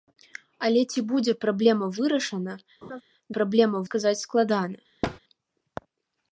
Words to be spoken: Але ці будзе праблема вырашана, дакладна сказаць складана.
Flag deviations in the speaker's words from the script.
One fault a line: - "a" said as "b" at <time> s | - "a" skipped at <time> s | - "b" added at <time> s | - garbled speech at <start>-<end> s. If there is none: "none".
- "дакладна" said as "праблема" at 3.4 s